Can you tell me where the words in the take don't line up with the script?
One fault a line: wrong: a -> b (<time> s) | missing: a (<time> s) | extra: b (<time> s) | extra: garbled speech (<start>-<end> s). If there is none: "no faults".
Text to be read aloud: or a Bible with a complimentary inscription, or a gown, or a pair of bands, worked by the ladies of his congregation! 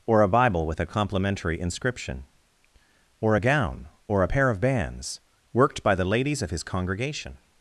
no faults